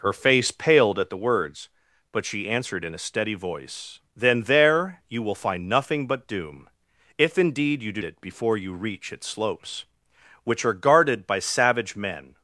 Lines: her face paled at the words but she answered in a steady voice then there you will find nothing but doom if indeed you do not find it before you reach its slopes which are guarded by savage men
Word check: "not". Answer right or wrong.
wrong